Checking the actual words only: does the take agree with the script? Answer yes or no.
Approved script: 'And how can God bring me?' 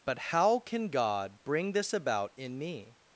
no